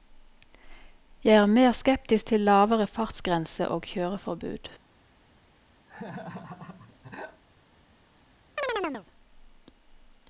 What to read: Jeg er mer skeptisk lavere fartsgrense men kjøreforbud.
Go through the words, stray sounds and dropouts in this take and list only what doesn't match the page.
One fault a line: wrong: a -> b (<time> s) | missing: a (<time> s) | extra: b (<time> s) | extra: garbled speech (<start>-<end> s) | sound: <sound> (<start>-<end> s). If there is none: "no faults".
extra: til (2.2 s)
wrong: men -> og (3.7 s)
sound: laugh (5.9-7.4 s)
sound: chirp (8.6-9.1 s)